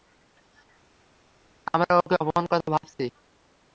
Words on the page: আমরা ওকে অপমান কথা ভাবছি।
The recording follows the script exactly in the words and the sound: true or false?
true